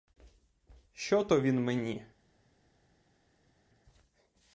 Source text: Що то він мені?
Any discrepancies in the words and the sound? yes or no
no